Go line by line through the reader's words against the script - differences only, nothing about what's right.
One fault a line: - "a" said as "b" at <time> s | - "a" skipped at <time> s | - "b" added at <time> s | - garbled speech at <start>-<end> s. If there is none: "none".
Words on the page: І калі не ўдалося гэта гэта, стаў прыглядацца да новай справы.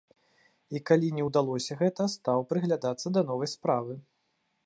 - "гэта" skipped at 2.1 s